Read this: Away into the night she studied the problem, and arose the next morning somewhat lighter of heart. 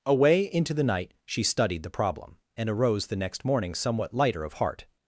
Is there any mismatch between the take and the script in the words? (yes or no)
no